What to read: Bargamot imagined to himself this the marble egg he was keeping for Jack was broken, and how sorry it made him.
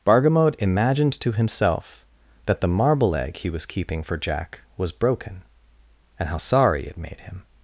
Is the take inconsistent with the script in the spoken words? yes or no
yes